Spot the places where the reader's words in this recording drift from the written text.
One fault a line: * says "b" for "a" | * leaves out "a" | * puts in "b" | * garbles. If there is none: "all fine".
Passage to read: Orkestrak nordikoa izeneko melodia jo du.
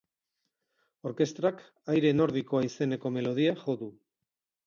* puts in "aire"